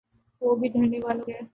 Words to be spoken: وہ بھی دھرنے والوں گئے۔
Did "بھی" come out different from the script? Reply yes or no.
no